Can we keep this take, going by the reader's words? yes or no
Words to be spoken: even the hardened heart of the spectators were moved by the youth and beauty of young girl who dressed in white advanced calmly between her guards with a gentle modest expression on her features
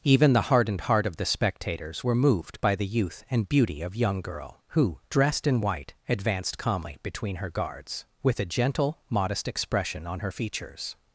yes